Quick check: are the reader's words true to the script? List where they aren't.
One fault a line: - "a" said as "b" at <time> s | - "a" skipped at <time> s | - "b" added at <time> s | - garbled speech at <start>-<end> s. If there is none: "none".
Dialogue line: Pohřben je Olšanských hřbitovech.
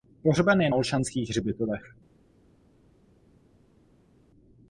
none